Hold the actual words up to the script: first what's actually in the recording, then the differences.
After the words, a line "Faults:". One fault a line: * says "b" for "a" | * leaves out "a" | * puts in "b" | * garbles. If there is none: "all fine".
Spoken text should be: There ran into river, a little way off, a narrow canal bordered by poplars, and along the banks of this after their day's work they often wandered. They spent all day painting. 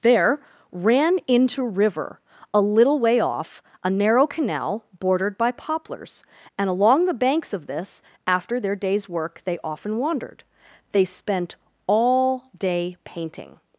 There ran into river, a little way off, a narrow canal bordered by poplars, and along the banks of this after their day's work they often wandered. They spent all day painting.
Faults:
all fine